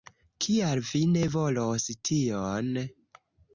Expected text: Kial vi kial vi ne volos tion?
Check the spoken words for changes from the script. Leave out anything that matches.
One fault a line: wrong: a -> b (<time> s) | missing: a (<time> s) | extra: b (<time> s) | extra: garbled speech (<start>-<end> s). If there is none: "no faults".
missing: kial vi (1.0 s)